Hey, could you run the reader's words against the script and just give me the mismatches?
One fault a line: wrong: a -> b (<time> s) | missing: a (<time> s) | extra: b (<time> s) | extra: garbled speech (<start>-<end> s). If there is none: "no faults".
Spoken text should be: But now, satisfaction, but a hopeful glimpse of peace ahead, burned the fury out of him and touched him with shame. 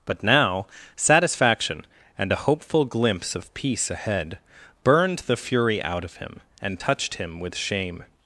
wrong: but -> and (2.2 s)